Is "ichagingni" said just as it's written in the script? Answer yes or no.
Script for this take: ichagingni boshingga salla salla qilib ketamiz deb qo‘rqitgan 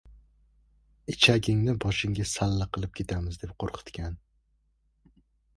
yes